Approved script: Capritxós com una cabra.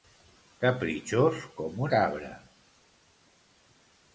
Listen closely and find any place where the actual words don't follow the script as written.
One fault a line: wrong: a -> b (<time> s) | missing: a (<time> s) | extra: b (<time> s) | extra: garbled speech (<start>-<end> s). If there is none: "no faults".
missing: una (1.9 s)